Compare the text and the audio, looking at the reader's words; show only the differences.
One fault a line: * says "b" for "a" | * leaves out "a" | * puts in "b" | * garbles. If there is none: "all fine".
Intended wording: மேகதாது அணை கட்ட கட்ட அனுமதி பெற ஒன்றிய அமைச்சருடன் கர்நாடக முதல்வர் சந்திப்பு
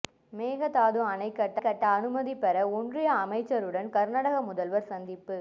all fine